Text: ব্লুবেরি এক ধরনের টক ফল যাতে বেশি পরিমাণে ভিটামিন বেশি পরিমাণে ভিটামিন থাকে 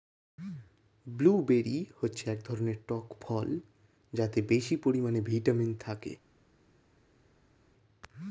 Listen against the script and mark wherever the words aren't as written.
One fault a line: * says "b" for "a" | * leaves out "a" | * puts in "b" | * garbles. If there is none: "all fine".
* puts in "হচ্ছে"
* leaves out "বেশি পরিমাণে ভিটামিন"